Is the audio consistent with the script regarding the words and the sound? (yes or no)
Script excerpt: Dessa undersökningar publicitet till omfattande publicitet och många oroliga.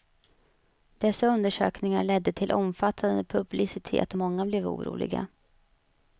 no